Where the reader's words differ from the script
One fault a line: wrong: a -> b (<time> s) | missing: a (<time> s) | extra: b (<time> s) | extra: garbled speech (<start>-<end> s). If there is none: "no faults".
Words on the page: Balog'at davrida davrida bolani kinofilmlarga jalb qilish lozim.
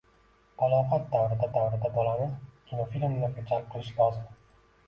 no faults